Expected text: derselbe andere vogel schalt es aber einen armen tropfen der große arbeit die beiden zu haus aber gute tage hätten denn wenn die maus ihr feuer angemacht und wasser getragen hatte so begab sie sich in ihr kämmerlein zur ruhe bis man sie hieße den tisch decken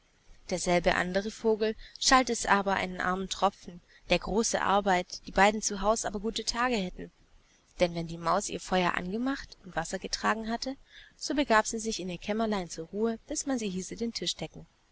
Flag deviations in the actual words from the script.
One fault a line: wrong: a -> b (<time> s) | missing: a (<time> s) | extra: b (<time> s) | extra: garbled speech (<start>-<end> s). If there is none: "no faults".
no faults